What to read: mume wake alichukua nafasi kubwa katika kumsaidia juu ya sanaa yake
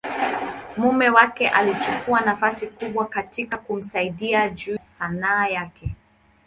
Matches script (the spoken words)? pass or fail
fail